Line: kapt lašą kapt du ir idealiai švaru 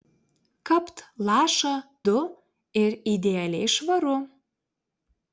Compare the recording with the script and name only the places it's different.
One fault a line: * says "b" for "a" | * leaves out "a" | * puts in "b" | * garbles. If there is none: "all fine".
* leaves out "kapt"